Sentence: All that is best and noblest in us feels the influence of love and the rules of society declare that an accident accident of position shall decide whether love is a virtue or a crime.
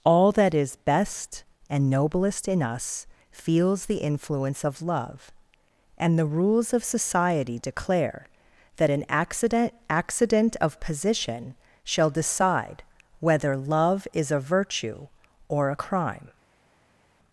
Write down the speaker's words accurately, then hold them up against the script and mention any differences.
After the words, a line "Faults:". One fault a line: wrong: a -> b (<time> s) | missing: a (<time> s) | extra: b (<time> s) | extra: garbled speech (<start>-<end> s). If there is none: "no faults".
All that is best and noblest in us feels the influence of love and the rules of society declare that an accident accident of position shall decide whether love is a virtue or a crime.
Faults:
no faults